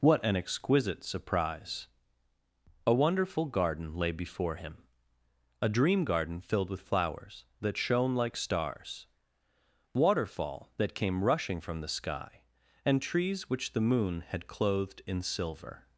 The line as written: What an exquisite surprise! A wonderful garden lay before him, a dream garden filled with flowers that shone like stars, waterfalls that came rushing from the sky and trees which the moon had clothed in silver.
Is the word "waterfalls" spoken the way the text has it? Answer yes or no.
no